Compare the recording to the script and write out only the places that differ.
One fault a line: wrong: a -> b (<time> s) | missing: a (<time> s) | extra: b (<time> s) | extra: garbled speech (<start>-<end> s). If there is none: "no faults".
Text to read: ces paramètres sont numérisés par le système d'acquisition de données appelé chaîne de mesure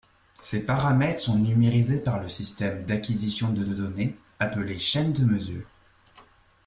extra: de (3.6 s)